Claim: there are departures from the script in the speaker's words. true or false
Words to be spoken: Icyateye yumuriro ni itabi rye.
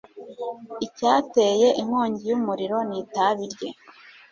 true